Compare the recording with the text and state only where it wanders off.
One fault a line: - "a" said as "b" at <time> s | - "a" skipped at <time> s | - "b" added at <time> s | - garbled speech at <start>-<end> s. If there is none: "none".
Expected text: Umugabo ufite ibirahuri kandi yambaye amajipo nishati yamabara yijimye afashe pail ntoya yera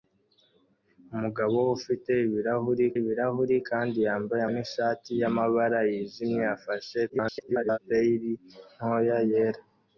- "ibirahuri" added at 3.0 s
- "amajipo" skipped at 4.4 s
- garbled speech at 7.1-7.8 s